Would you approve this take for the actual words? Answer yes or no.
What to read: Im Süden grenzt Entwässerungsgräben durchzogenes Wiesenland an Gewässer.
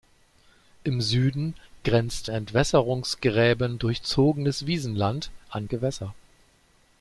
yes